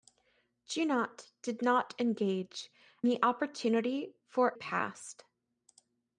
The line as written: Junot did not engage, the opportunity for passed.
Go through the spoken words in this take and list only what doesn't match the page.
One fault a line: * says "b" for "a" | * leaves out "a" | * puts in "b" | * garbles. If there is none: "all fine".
all fine